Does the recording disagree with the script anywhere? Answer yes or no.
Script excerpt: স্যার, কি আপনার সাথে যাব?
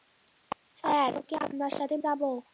no